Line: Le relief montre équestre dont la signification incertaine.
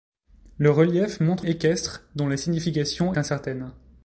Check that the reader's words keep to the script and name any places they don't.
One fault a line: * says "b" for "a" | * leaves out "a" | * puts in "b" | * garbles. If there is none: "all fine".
all fine